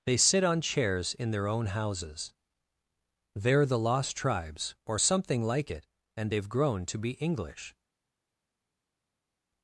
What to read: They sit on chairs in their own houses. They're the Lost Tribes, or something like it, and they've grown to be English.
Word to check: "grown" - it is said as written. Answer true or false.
true